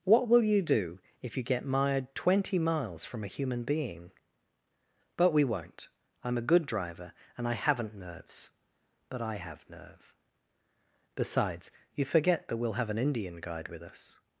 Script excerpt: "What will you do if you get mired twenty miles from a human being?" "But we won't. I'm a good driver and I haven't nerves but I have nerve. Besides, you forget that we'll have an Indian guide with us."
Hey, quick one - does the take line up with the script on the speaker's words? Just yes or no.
yes